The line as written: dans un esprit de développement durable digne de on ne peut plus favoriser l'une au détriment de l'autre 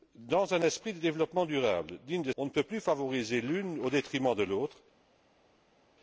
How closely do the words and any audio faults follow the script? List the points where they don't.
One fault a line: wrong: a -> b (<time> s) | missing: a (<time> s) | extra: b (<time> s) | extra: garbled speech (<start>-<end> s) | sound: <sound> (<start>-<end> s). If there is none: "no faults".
no faults